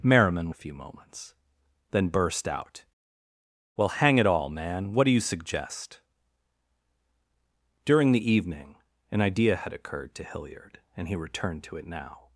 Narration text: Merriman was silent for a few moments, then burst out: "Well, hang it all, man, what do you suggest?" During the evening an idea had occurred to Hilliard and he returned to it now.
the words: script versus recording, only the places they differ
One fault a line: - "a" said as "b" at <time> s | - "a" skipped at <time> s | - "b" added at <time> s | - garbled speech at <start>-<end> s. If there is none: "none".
- "was silent for" skipped at 0.5 s